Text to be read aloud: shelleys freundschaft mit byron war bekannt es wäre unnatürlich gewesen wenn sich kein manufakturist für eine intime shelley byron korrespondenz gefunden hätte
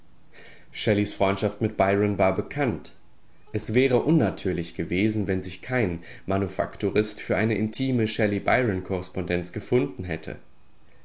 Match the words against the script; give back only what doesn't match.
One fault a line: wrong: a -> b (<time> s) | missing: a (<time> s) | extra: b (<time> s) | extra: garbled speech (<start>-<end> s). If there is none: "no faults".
no faults